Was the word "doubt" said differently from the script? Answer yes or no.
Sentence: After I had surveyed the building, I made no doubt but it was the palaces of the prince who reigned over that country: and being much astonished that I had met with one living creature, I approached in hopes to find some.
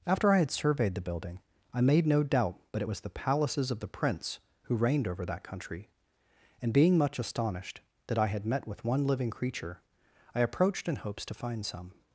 no